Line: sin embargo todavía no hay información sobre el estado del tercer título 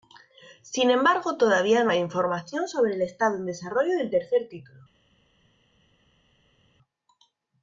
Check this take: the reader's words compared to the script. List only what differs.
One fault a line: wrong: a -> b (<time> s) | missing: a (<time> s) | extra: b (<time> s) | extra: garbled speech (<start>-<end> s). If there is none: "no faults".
extra: en desarrollo (3.3 s)